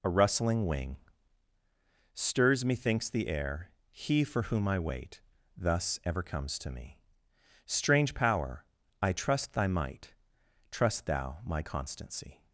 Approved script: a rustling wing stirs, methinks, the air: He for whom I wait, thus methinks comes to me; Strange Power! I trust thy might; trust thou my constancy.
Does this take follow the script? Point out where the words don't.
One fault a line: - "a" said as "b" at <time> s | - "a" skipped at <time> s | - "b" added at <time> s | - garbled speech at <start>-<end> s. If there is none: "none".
- "methinks" said as "ever" at 6.0 s